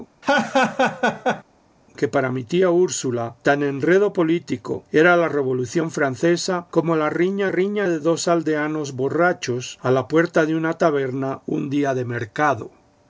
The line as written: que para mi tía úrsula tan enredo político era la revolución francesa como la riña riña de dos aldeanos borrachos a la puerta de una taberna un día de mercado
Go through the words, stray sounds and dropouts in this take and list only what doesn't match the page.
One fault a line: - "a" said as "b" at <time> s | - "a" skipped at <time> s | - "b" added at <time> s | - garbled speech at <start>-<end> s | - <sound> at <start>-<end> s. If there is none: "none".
- laugh at 0.2-1.4 s